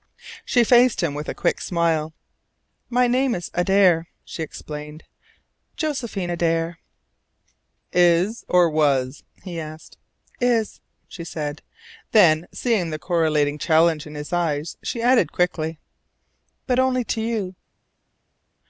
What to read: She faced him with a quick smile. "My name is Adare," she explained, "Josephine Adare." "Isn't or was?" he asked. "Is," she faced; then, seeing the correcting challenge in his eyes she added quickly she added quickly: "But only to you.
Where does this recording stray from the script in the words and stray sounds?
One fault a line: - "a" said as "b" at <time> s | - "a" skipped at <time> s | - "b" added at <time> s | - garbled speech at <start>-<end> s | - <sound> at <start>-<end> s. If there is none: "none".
- "Isn't" said as "Is" at 7.9 s
- "faced" said as "said" at 11.2 s
- "she added quickly" skipped at 15.8 s